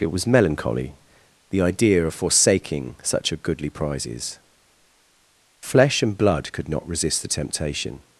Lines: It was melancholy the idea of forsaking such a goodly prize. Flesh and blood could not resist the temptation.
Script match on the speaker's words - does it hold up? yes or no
no